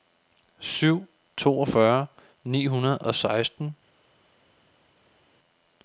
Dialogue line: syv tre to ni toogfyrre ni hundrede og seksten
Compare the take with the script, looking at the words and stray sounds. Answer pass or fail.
fail